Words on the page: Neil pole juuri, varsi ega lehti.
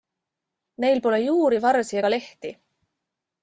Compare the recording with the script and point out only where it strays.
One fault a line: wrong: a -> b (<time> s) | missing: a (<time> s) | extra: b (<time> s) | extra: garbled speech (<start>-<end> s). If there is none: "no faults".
no faults